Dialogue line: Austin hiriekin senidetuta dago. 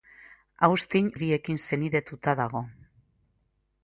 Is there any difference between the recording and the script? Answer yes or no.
no